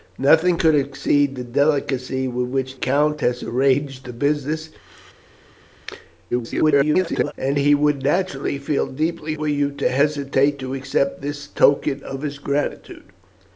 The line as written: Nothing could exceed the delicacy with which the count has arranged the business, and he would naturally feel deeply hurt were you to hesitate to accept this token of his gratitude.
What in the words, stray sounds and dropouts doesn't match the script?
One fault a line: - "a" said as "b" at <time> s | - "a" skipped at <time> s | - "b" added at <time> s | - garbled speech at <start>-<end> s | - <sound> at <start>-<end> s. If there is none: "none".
- "the" skipped at 2.8 s
- garbled speech at 6.3-7.3 s
- "hurt" skipped at 9.3 s